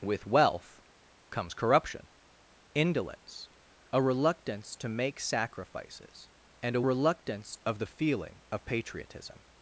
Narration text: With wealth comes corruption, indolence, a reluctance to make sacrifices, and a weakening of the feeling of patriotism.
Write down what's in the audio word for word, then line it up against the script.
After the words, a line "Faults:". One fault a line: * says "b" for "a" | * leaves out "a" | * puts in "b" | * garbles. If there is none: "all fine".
With wealth comes corruption, indolence, a reluctance to make sacrifices, and a reluctance of the feeling of patriotism.
Faults:
* says "reluctance" for "weakening"